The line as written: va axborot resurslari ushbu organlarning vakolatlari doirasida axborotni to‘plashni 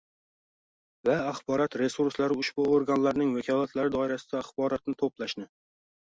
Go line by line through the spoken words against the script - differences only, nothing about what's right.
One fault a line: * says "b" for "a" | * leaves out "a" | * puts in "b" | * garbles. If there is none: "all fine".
all fine